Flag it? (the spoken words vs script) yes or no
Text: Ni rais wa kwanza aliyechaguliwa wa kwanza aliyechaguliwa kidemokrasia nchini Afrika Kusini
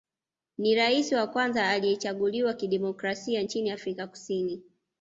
yes